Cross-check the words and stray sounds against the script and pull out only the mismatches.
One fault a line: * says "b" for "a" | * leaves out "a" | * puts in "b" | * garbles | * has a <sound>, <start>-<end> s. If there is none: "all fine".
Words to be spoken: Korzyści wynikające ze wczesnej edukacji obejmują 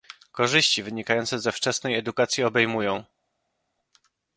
all fine